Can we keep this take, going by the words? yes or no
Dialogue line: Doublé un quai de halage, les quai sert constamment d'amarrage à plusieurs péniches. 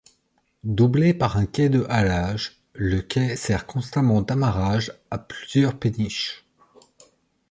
no